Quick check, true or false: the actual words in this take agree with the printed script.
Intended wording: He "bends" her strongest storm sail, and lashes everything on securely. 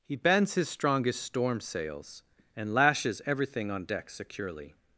false